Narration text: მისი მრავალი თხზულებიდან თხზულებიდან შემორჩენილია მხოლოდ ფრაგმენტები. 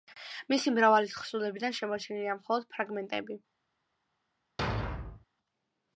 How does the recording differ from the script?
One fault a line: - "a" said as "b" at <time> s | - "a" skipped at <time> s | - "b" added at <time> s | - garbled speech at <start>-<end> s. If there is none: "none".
- "თხზულებიდან" skipped at 1.8 s